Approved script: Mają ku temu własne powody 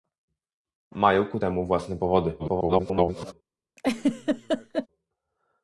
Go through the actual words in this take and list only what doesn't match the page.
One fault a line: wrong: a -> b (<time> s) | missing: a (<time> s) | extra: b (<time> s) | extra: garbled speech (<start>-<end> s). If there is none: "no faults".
extra: garbled speech (2.4-3.3 s)